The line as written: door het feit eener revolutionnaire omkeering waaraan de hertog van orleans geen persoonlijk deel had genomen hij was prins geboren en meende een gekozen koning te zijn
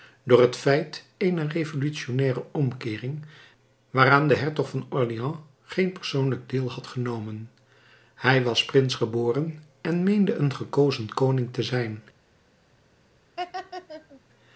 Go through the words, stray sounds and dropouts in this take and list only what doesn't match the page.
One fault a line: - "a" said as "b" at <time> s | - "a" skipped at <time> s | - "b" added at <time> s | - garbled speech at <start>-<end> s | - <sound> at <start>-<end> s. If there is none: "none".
- laugh at 13.4-14.2 s